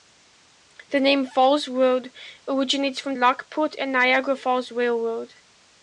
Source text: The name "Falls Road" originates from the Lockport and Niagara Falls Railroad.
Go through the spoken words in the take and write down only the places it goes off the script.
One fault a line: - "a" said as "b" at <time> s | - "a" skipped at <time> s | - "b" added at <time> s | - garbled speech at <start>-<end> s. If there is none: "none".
- "the" skipped at 3.1 s